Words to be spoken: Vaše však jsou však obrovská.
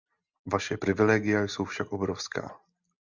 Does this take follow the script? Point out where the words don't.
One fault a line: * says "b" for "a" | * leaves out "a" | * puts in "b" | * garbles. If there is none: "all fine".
* says "privilegia" for "však"